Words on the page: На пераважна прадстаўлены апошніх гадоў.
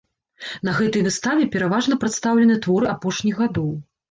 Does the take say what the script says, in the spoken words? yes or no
no